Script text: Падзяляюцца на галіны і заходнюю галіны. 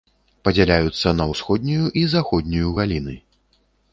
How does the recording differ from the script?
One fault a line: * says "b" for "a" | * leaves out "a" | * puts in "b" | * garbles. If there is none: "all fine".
* says "ўсходнюю" for "галіны"